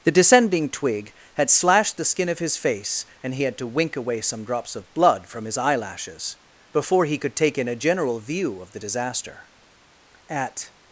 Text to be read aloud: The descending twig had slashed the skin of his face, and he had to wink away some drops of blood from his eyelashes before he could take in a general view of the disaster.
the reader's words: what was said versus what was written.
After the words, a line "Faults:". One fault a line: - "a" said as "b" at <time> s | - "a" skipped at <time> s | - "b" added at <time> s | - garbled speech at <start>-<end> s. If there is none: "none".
The descending twig had slashed the skin of his face, and he had to wink away some drops of blood from his eyelashes before he could take in a general view of the disaster. At
Faults:
- "At" added at 10.3 s